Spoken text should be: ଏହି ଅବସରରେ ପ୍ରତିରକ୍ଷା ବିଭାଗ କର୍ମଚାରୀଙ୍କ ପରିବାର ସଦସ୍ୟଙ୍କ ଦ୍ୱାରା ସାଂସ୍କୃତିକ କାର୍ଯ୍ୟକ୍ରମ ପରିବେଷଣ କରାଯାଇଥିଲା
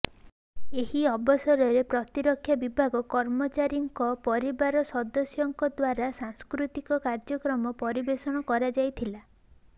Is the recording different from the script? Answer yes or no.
no